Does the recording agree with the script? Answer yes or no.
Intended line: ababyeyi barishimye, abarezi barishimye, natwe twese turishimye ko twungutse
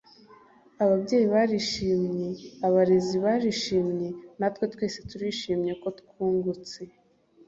yes